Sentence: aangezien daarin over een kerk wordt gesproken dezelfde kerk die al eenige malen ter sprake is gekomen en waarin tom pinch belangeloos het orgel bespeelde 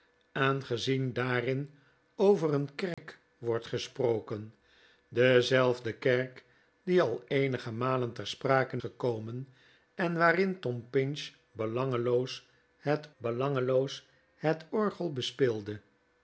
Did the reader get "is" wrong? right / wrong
wrong